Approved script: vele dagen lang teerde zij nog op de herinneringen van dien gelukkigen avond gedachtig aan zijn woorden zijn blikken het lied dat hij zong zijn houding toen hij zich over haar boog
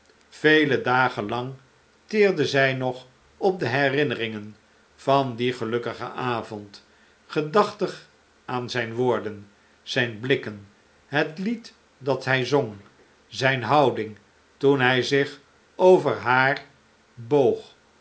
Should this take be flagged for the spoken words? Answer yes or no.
no